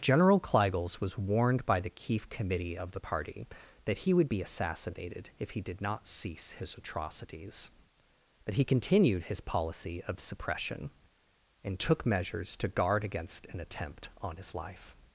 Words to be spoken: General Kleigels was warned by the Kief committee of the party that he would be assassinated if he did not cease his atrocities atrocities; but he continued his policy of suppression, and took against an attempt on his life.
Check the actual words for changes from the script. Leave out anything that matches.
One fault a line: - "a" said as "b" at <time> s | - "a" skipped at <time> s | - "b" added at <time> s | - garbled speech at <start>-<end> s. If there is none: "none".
- "atrocities" skipped at 7.7 s
- "measures to guard" added at 12.0 s